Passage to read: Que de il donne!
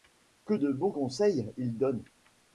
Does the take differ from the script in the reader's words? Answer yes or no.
yes